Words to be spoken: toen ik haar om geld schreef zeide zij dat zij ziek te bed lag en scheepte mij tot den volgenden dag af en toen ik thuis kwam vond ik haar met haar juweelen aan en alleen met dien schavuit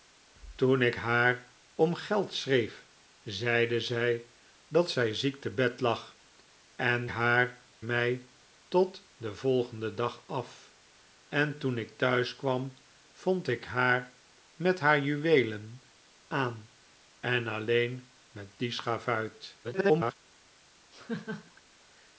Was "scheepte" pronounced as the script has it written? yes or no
no